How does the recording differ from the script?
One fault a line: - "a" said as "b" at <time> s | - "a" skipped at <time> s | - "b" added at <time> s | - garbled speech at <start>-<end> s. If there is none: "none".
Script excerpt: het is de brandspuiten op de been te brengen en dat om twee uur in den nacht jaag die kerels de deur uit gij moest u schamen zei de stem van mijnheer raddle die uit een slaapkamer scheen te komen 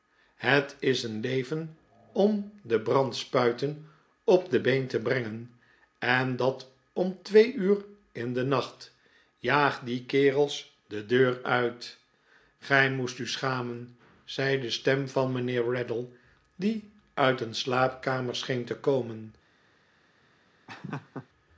- "een leven om" added at 1.0 s